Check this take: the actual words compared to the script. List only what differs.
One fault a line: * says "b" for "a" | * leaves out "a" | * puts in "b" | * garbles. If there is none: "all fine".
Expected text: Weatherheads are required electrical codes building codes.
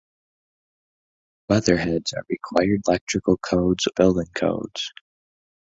all fine